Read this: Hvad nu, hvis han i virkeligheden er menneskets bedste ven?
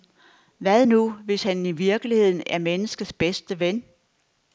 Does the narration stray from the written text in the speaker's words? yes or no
no